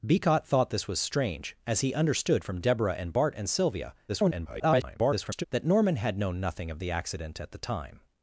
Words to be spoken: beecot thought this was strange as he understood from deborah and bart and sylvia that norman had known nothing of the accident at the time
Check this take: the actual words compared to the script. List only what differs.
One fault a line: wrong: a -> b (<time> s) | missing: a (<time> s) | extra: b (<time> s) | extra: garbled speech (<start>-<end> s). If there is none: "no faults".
extra: garbled speech (4.1-5.4 s)